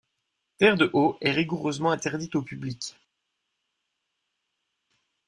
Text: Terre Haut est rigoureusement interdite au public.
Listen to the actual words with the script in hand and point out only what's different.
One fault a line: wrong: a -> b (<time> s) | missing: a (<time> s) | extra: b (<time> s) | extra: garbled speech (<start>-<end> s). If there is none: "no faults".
extra: de (0.8 s)